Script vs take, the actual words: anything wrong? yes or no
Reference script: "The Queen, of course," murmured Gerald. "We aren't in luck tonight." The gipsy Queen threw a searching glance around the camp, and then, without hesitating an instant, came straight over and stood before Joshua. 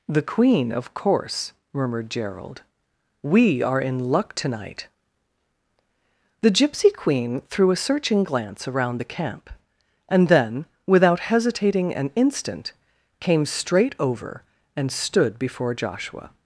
yes